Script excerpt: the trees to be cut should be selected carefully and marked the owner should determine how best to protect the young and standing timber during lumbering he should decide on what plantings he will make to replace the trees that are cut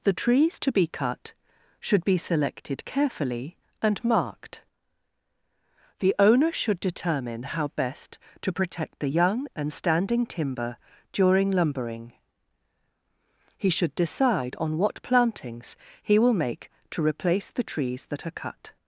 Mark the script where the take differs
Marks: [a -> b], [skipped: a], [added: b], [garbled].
the trees to be cut should be selected carefully and marked the owner should determine how best to protect the young and standing timber during lumbering he should decide on what plantings he will make to replace the trees that are cut